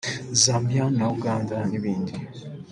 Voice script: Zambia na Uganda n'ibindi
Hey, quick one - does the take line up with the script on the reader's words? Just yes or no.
yes